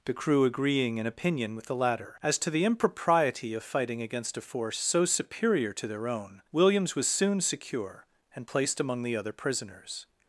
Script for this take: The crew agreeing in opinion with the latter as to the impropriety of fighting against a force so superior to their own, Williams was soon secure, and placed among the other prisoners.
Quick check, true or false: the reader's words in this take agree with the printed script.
true